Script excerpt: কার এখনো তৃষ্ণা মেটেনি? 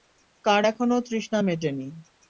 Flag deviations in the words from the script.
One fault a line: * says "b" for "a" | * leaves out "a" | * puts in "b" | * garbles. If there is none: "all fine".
all fine